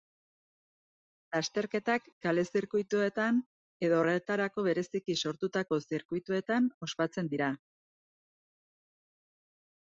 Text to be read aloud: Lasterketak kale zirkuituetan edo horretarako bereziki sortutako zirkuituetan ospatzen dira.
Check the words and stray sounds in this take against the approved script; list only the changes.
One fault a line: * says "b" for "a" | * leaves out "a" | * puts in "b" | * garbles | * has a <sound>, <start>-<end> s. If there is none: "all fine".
all fine